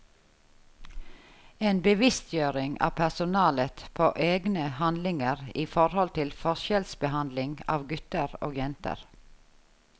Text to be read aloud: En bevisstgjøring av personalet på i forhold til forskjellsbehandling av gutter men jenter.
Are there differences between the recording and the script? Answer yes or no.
yes